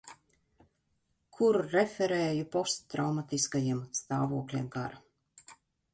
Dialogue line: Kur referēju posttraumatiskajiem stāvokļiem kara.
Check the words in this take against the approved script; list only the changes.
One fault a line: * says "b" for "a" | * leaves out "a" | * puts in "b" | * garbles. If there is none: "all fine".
all fine